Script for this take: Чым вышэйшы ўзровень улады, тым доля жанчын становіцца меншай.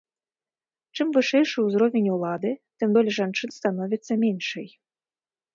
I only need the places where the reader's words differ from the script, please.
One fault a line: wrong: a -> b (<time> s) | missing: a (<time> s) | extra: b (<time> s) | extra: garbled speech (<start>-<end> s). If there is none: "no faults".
no faults